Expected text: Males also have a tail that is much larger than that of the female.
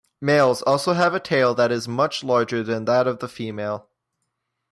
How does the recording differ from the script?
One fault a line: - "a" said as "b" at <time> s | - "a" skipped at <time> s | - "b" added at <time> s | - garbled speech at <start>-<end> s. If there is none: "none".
none